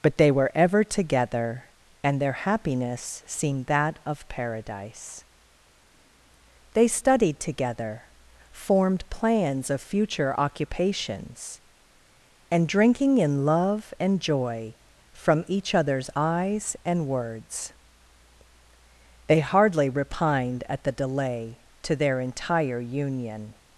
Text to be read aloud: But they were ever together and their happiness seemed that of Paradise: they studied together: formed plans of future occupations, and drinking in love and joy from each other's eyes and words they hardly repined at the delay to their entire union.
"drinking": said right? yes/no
yes